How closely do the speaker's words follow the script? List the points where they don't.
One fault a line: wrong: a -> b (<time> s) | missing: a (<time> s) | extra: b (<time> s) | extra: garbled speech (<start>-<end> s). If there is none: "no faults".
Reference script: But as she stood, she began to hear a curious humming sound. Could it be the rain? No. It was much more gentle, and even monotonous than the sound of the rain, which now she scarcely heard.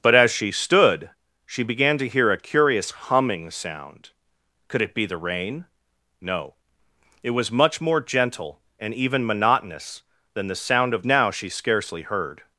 missing: the rain which (11.0 s)